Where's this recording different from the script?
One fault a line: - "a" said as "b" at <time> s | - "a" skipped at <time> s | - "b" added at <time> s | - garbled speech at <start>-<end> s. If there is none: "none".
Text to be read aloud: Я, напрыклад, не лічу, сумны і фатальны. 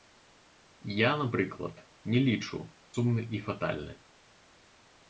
none